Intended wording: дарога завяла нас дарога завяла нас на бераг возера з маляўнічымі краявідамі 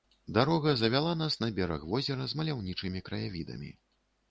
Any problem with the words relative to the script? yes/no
yes